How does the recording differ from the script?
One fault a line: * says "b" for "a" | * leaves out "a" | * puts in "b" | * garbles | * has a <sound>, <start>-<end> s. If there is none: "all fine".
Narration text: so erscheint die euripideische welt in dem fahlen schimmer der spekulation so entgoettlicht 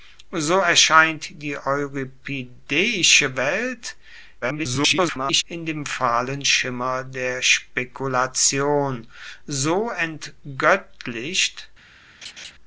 * garbles
* has a laugh, 12.2-12.5 s